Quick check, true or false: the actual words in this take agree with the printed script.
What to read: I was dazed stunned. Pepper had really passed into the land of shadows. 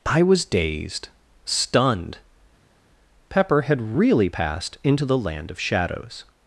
true